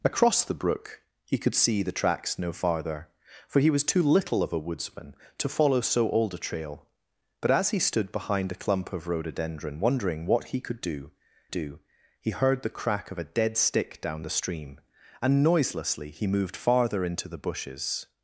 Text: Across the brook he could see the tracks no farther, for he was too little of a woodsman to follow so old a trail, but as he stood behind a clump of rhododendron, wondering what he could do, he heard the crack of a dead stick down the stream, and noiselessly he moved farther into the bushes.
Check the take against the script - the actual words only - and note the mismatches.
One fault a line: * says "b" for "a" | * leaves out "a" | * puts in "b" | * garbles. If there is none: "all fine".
* puts in "do"